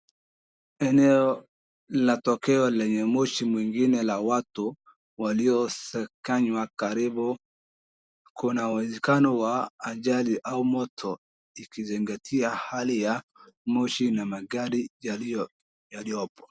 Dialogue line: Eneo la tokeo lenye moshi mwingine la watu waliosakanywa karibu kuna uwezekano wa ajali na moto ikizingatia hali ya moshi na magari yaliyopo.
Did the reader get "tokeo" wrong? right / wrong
right